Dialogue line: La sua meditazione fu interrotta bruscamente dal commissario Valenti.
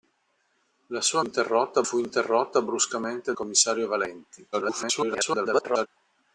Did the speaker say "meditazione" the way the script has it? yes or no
no